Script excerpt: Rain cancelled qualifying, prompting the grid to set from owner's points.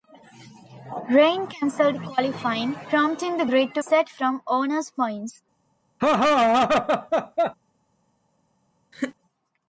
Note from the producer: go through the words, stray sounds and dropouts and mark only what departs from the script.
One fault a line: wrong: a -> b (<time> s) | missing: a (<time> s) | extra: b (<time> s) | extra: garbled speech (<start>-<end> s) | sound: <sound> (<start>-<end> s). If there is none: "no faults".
sound: laugh (6.0-7.5 s)
sound: laugh (8.9-9.2 s)